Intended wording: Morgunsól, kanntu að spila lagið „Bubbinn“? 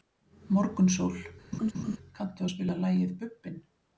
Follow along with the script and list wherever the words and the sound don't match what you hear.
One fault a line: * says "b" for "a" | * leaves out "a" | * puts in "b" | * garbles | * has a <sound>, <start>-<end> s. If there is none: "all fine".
* has a laugh, 1.5-2.0 s